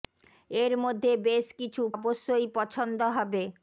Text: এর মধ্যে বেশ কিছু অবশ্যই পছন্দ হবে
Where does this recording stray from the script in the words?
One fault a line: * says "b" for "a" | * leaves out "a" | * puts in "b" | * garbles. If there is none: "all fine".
all fine